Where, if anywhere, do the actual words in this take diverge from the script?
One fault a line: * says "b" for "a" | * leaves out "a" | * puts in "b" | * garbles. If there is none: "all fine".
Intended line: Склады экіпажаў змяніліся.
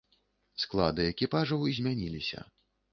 all fine